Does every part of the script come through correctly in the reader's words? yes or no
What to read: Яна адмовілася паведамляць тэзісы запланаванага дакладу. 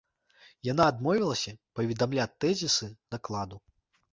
no